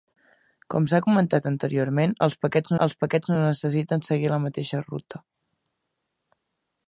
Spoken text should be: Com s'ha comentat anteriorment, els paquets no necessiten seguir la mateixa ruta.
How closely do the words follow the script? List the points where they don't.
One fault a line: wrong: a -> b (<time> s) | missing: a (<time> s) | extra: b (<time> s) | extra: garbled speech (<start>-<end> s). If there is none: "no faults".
extra: els paquets (2.9 s)